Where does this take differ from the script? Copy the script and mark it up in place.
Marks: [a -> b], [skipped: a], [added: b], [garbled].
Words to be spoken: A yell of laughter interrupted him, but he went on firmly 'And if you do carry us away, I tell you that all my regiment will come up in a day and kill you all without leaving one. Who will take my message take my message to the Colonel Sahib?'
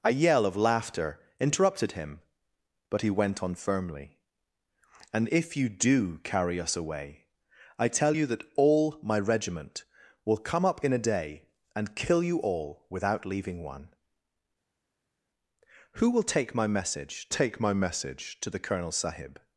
A yell of laughter interrupted him, but he went on firmly 'And if you do carry us away, I tell you that all my regiment will come up in a day and kill you all without leaving one. Who will take my message take my message to the Colonel Sahib?'